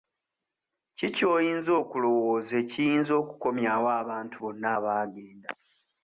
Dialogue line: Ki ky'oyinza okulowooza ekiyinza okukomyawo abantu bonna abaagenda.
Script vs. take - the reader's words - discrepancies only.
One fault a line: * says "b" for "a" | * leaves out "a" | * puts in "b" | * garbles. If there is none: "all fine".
all fine